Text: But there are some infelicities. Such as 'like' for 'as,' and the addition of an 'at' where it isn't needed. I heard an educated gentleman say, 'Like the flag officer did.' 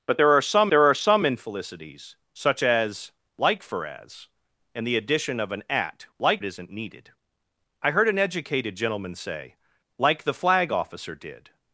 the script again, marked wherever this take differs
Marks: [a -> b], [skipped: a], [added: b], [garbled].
But there are some [added: there are some] infelicities. Such as 'like' for 'as,' and the addition of an 'at' [where -> like] it isn't needed. I heard an educated gentleman say, 'Like the flag officer did.'